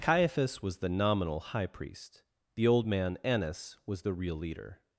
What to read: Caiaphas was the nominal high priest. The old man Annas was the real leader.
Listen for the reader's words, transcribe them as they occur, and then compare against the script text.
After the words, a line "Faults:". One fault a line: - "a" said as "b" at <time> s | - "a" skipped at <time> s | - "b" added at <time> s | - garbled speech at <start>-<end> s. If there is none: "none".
Caiaphas was the nominal high priest. The old man Annas was the real leader.
Faults:
none